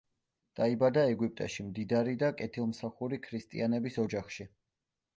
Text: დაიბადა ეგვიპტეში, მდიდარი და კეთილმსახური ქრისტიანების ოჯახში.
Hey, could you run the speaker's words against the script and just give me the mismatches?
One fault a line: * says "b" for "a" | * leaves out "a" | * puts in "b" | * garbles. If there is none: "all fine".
all fine